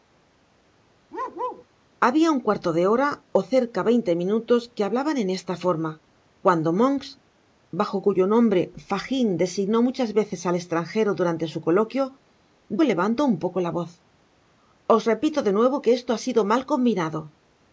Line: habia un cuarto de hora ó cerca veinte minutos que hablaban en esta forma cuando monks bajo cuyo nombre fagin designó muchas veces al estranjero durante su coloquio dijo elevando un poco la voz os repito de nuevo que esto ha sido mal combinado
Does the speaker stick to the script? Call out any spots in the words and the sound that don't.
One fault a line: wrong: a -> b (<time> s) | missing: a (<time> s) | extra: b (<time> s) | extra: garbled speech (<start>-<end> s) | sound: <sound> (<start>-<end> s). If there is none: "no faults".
sound: bark (1.1-1.7 s)
missing: dijo (12.0 s)